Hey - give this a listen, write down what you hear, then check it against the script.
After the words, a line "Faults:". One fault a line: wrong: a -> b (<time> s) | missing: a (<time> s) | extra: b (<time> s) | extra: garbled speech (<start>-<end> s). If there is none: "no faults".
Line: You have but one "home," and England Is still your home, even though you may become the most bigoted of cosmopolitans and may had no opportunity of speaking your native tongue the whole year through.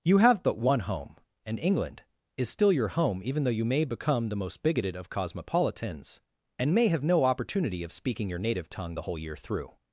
You have but one "home," and England Is still your home, even though you may become the most bigoted of cosmopolitans and may have no opportunity of speaking your native tongue the whole year through.
Faults:
wrong: had -> have (6.9 s)